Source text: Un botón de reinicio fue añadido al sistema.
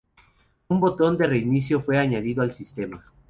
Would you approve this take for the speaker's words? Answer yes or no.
yes